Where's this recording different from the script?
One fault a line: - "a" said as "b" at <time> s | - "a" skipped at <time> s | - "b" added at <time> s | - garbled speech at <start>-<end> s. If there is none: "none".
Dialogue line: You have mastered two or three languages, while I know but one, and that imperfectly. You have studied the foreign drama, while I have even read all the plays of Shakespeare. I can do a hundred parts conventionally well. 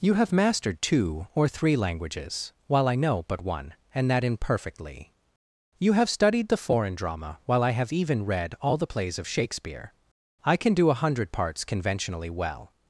none